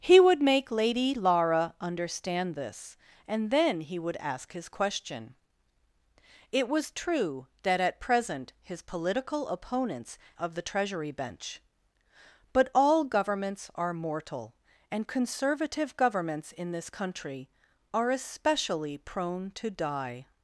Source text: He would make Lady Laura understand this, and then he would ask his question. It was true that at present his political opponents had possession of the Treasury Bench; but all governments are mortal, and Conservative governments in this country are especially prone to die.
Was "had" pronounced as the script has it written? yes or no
no